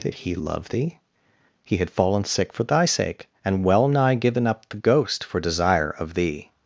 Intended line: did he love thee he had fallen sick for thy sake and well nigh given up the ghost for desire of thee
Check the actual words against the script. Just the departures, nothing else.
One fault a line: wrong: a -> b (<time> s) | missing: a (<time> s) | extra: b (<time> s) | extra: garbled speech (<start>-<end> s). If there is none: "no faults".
no faults